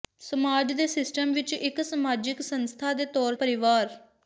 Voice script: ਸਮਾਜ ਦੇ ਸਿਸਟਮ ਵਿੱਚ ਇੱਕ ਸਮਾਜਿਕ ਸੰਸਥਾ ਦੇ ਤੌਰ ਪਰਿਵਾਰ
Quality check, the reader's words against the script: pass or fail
pass